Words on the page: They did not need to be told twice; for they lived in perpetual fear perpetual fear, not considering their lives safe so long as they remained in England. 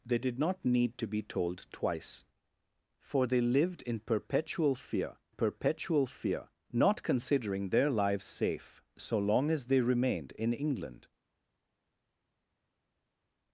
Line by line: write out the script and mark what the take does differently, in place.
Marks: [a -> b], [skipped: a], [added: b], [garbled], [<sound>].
They did not need to be told twice; for they lived in perpetual fear perpetual fear, not considering their lives safe so long as they remained in England.